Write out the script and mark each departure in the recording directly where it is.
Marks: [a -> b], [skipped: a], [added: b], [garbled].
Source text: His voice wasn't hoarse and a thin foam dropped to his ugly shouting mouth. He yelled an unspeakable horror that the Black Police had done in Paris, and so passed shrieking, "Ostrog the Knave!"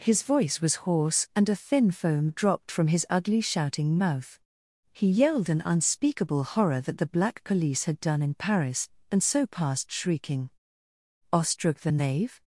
His voice [wasn't -> was] hoarse and a thin foam dropped [to -> from] his ugly shouting mouth. He yelled an unspeakable horror that the Black Police had done in Paris, and so passed shrieking, "Ostrog the Knave!"